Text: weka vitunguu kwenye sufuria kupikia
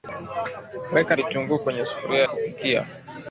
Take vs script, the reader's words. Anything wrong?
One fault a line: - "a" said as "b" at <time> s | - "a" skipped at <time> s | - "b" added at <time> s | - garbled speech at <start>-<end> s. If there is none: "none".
none